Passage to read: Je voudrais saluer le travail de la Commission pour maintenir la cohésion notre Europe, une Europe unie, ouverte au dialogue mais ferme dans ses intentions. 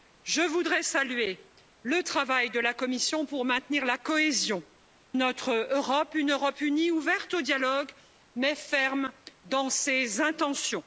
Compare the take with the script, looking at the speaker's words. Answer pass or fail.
pass